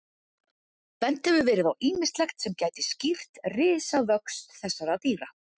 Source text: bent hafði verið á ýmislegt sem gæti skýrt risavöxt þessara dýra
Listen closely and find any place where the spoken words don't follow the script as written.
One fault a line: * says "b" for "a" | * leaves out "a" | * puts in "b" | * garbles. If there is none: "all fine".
* says "hefur" for "hafði"